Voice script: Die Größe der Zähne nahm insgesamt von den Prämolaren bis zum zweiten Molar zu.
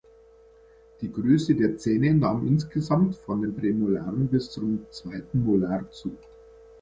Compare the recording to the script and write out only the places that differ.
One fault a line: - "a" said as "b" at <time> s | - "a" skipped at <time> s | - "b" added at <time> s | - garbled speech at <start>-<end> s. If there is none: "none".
none